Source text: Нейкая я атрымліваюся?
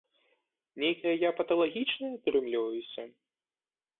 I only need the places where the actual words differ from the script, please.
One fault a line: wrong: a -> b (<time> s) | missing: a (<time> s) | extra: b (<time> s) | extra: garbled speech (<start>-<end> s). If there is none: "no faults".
extra: паталагічная (1.4 s)